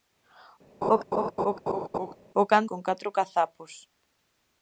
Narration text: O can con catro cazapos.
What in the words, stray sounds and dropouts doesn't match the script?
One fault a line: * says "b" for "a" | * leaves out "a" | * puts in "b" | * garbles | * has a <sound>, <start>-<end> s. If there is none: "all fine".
* has a laugh, 0.8-2.1 s